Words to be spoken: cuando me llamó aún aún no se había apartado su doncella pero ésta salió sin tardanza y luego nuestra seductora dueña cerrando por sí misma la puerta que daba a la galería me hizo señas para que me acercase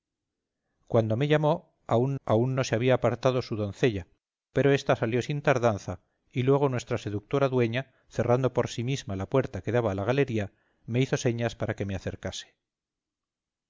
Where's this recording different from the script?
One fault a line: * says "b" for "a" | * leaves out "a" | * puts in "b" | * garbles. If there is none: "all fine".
all fine